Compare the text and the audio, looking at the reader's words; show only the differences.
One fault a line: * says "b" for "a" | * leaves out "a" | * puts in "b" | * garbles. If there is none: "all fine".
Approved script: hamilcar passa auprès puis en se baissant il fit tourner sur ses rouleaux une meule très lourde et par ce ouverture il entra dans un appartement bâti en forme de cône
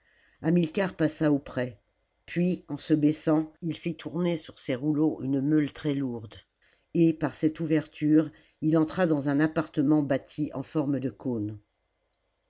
* says "cette" for "ce"